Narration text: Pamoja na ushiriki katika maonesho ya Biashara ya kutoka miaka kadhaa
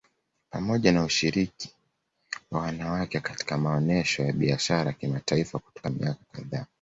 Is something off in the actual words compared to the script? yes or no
yes